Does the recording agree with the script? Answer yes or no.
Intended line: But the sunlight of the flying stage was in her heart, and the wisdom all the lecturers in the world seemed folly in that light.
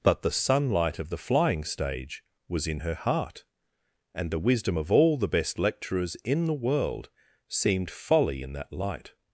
no